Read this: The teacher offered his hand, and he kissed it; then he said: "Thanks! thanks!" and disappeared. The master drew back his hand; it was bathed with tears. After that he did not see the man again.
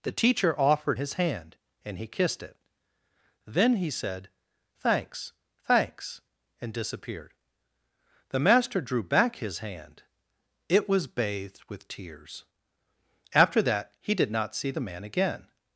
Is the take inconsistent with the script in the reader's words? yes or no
no